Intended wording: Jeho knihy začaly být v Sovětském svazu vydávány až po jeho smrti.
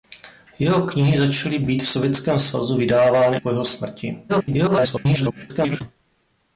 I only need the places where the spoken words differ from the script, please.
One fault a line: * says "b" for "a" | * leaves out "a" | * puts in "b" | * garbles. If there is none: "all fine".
* leaves out "až"
* garbles